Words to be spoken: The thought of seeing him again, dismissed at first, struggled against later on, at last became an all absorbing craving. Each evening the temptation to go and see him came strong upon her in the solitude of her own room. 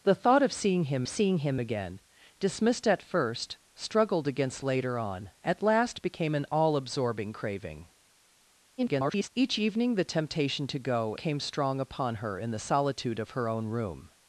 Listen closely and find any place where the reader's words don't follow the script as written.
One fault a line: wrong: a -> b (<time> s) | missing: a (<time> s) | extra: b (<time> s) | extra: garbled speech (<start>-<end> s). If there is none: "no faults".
extra: seeing him (1.1 s)
extra: garbled speech (8.8-9.3 s)
missing: and see him (11.1 s)